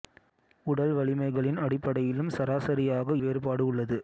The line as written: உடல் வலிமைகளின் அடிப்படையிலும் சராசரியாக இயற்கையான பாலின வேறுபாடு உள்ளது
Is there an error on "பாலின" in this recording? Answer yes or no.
yes